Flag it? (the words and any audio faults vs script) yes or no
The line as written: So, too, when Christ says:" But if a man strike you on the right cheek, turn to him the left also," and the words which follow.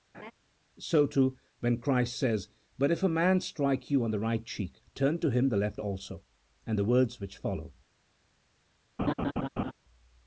yes